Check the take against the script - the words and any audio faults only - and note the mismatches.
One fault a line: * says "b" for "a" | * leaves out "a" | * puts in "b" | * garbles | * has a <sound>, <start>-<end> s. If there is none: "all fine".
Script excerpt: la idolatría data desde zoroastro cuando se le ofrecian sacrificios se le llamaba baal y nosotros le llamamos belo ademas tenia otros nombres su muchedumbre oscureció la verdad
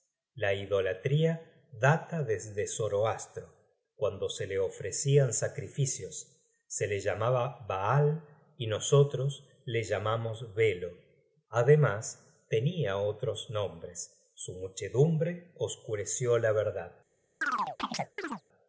* has a chirp, 17.4-18.4 s